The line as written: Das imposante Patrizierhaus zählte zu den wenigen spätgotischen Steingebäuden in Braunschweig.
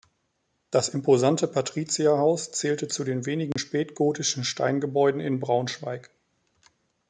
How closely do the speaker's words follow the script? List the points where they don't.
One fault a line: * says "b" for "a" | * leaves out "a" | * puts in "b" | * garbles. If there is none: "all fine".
all fine